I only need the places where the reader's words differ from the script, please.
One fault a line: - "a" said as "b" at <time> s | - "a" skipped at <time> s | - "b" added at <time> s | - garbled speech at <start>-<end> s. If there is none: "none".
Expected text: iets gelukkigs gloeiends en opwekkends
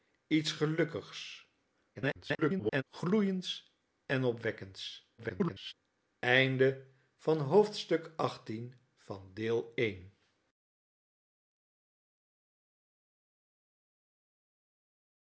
- garbled speech at 1.9-2.8 s
- garbled speech at 5.2-5.7 s